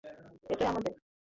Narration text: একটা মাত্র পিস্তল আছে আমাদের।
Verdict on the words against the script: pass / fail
fail